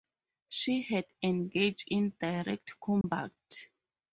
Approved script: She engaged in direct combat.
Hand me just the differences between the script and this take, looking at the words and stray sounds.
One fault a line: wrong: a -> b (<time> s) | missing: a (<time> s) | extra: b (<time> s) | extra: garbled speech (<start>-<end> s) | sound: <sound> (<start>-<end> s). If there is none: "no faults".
extra: had (0.8 s)
sound: dropout (3.0-3.0 s)